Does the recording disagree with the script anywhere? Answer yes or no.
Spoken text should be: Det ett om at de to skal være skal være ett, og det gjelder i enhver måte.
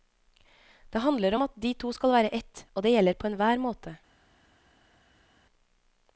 yes